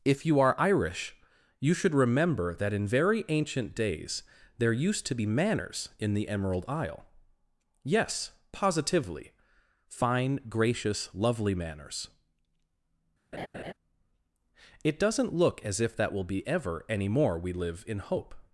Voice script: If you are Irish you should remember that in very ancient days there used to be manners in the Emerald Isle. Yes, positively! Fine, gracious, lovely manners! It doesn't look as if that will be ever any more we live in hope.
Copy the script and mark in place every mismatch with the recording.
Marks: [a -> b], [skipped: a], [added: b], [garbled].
If you are Irish you should remember that in very ancient days there used to be manners in the Emerald Isle. Yes, positively! Fine, gracious, lovely manners! It doesn't look as if that will be ever any more we live in hope.